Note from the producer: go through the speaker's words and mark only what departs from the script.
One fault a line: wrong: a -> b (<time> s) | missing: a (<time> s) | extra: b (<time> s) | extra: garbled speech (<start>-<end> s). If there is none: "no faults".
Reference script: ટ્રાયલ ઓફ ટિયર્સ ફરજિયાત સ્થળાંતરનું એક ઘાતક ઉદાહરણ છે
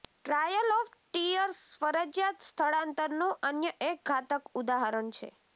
extra: અન્ય (3.4 s)